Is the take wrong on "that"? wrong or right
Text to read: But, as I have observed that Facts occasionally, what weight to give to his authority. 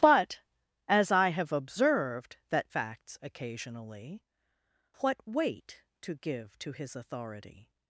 right